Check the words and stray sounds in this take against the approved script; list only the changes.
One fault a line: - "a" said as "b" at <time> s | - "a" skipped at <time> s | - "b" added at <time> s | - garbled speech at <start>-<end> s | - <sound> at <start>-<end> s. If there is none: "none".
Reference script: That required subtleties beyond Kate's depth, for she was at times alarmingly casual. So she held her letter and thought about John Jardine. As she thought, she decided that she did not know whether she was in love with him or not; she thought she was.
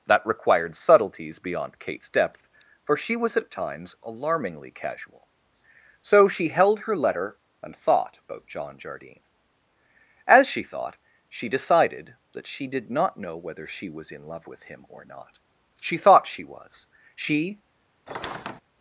- "She" added at 17.1 s
- squeak at 18.1-18.6 s